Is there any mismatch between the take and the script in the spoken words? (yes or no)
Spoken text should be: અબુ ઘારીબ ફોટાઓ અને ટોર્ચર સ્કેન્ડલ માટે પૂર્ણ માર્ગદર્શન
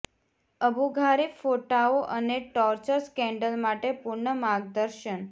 no